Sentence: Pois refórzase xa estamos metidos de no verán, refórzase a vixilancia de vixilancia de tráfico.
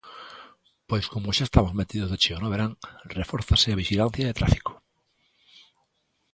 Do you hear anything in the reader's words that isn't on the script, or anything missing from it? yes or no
yes